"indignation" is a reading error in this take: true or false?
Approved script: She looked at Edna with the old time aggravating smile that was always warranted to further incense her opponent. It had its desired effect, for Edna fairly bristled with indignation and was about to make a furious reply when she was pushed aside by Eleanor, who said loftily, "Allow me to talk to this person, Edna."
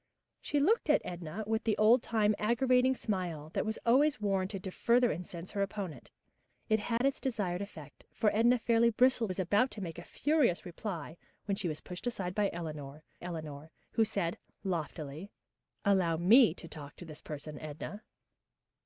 true